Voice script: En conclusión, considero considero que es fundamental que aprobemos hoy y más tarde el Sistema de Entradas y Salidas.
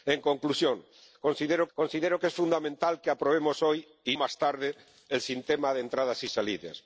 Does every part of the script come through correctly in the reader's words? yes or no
yes